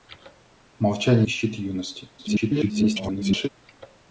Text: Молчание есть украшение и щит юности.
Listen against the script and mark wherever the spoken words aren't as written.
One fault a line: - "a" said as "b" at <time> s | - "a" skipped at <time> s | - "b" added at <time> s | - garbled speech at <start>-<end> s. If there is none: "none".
- "есть украшение" skipped at 1.3 s
- garbled speech at 2.2-3.5 s